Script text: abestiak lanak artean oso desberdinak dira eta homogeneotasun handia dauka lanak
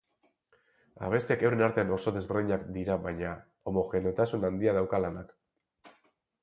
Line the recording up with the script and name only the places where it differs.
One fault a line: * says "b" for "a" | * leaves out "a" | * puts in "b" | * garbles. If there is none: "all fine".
* says "euren" for "lanak"
* says "baina" for "eta"